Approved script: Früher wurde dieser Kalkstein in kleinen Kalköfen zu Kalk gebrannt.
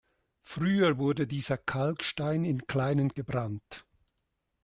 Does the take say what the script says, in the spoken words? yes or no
no